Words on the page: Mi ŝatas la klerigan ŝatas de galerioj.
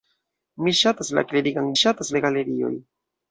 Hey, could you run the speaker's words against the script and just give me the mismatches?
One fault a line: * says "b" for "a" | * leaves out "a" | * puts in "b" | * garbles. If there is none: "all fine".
all fine